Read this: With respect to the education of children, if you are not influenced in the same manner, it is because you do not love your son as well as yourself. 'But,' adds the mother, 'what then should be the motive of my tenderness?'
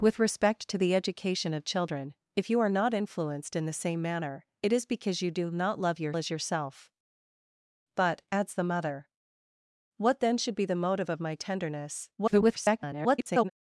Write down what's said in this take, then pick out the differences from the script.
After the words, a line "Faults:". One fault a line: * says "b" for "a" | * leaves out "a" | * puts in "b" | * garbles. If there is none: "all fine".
With respect to the education of children, if you are not influenced in the same manner, it is because you do not love your as yourself. 'But,' adds the mother, 'what then should be the motive of my tenderness?' [garbled]
Faults:
* leaves out "son as well"
* garbles